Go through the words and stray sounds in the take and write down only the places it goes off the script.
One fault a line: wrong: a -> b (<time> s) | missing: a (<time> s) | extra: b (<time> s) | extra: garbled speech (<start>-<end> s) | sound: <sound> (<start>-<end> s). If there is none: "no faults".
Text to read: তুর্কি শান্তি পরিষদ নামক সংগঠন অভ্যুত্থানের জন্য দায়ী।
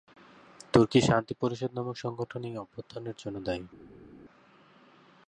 extra: এই (2.4 s)